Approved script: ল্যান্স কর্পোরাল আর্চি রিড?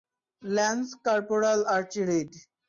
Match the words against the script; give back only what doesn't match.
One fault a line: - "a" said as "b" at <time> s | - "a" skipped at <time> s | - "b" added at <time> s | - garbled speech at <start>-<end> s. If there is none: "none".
none